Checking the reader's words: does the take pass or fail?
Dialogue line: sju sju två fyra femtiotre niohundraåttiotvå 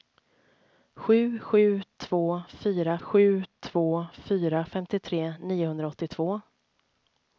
fail